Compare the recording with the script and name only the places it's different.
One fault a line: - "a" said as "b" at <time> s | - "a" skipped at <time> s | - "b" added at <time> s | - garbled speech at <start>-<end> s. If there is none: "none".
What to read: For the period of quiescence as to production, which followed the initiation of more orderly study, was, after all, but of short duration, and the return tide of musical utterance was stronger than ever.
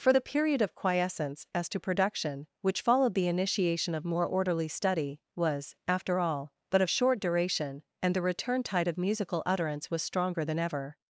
none